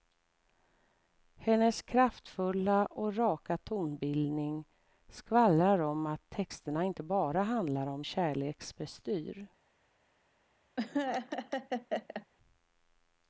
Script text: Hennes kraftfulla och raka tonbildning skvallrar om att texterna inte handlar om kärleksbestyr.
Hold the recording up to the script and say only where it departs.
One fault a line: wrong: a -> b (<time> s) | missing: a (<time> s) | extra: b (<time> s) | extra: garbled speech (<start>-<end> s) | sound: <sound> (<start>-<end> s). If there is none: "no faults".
extra: bara (7.0 s)
sound: laugh (10.8-12.3 s)